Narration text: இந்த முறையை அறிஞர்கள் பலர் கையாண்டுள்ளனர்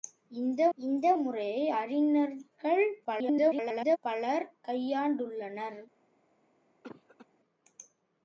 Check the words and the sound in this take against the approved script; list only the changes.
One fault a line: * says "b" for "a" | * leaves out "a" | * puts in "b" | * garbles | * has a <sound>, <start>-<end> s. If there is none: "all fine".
* puts in "இந்த"
* garbles
* has a cough, 6.8-7.3 s